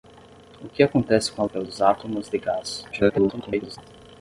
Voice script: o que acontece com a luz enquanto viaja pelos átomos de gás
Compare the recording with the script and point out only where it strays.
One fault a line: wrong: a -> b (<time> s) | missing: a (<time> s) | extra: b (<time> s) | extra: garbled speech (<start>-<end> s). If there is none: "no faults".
missing: luz enquanto viaja (1.4 s)
extra: garbled speech (2.9-3.8 s)